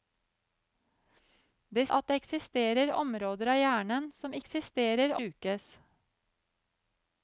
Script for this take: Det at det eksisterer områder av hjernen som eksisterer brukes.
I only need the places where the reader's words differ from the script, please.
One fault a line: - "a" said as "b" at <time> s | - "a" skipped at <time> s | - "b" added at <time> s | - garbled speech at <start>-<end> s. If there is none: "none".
none